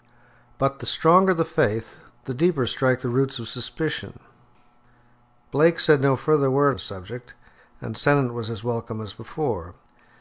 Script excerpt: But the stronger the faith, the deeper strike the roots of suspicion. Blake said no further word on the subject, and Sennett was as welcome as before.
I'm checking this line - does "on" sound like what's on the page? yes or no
no